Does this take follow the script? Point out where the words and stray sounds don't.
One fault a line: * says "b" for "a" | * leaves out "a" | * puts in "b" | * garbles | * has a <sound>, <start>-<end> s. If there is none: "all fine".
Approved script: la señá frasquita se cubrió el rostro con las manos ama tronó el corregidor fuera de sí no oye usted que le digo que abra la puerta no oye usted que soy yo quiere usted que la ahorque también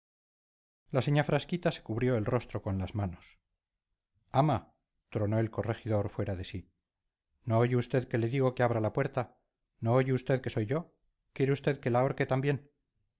all fine